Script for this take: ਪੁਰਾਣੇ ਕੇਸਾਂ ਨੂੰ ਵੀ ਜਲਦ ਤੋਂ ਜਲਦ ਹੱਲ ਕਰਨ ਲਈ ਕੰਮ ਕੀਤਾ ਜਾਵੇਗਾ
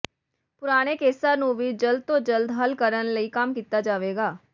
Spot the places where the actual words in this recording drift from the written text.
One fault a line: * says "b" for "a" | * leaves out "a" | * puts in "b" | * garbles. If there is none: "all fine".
all fine